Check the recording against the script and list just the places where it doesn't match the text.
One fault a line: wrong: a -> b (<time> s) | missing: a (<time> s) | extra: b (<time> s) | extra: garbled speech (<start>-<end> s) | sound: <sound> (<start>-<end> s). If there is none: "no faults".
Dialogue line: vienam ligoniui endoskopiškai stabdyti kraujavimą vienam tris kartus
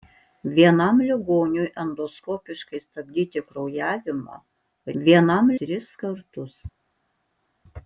no faults